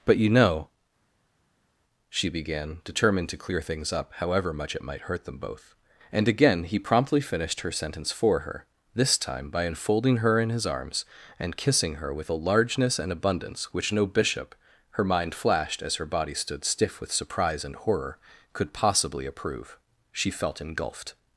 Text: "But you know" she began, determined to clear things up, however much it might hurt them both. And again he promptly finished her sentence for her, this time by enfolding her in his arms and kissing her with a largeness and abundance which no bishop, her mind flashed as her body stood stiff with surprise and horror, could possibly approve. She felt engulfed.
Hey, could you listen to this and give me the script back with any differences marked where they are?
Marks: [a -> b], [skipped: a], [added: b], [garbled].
"But you know" she began, determined to clear things up, however much it might hurt them both. And again he promptly finished her sentence for her, this time by enfolding her in his arms and kissing her with a largeness and abundance which no bishop, her mind flashed as her body stood stiff with surprise and horror, could possibly approve. She felt engulfed.